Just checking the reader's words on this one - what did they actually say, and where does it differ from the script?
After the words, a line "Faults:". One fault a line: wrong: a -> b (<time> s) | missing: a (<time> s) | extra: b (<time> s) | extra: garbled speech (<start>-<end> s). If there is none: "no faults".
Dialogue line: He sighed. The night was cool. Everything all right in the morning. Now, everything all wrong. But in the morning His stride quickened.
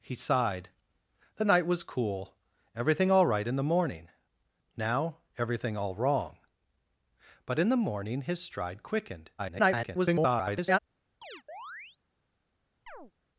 He sighed. The night was cool. Everything all right in the morning. Now, everything all wrong. But in the morning His stride quickened. [garbled]
Faults:
extra: garbled speech (9.4-10.8 s)